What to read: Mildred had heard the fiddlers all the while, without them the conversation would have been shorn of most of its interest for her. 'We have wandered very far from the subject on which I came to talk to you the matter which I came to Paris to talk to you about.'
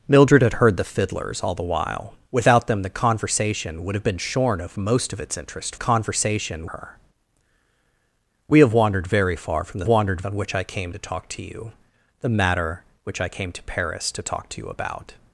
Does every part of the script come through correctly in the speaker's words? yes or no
no